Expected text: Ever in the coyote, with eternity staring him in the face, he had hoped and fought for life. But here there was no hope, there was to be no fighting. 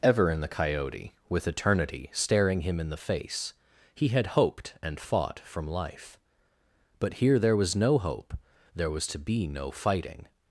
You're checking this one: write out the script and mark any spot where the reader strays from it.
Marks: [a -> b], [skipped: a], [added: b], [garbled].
Ever in the coyote, with eternity staring him in the face, he had hoped and fought [for -> from] life. But here there was no hope, there was to be no fighting.